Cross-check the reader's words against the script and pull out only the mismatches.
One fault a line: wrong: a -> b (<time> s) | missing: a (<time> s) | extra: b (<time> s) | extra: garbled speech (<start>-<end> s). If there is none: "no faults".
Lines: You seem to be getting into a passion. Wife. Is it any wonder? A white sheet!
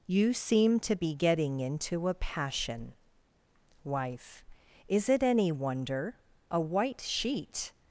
no faults